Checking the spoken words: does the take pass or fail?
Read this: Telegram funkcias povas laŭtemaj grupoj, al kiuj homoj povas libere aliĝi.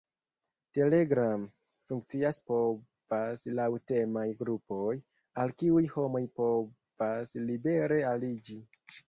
pass